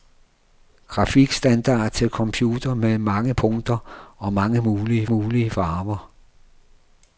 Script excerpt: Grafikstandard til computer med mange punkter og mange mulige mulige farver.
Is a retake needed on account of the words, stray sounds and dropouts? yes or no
no